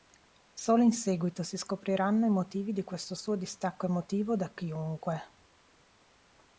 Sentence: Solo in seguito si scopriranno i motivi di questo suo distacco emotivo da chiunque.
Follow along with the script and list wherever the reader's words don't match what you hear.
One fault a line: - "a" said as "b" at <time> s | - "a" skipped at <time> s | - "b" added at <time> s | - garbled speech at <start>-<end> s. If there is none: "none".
none